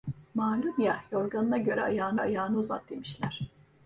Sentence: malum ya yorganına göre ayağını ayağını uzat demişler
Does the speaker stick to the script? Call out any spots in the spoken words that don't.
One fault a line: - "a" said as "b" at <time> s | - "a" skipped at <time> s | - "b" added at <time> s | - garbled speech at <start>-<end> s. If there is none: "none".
none